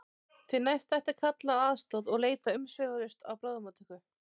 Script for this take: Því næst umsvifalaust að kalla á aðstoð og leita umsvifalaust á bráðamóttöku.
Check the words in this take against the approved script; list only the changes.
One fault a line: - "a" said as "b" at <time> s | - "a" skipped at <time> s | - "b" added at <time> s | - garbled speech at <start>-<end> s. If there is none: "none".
- "umsvifalaust" said as "ætti" at 1.0 s